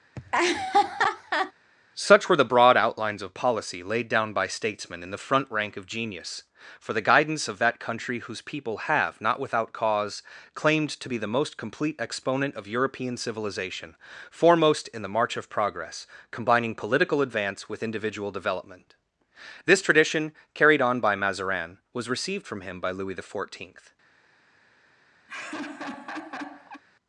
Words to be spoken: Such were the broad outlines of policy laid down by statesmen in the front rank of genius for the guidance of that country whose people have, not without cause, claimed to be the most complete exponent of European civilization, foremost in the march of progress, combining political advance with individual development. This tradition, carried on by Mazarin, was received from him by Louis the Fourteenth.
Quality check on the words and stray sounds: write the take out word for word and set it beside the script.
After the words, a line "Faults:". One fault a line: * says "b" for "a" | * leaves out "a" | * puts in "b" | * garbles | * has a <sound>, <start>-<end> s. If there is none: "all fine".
Such were the broad outlines of policy laid down by statesmen in the front rank of genius for the guidance of that country whose people have, not without cause, claimed to be the most complete exponent of European civilization, foremost in the march of progress, combining political advance with individual development. This tradition, carried on by Mazarin, was received from him by Louis the Fourteenth.
Faults:
* has a laugh, 0.2-1.5 s
* has a laugh, 25.3-26.8 s